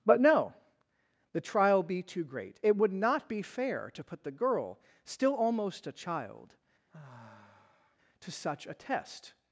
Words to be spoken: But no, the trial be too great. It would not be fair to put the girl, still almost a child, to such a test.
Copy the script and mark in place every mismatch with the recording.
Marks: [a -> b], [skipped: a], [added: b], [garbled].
But no, the trial be too great. It would not be fair to put the girl, still almost a child, to such a test.